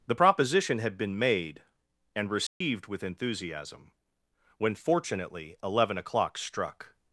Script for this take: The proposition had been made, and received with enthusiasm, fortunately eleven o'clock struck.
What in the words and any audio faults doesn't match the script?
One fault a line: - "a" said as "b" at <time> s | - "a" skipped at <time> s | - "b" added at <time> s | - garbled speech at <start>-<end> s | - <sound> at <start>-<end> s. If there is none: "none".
- dropout at 2.5-2.6 s
- "when" added at 4.6 s